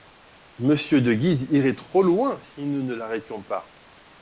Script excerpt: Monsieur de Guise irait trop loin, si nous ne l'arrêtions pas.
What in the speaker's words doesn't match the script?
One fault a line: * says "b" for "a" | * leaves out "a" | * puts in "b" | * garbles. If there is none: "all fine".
all fine